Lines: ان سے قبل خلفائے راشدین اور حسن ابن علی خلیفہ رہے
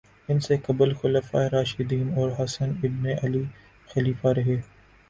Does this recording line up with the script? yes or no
yes